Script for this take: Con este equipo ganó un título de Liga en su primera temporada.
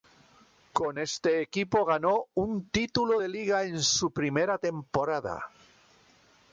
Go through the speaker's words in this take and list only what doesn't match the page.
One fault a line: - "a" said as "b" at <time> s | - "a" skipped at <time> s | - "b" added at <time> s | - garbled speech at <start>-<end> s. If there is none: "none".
none